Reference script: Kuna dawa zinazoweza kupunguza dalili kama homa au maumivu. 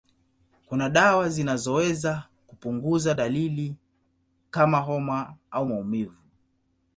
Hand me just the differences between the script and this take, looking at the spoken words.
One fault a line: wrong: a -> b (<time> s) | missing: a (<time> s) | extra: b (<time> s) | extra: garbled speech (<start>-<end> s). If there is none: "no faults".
no faults